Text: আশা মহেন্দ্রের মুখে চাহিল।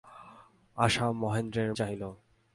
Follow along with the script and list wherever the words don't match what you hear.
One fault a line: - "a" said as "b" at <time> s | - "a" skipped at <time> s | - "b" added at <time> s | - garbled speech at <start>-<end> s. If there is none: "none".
- "মুখে" skipped at 1.7 s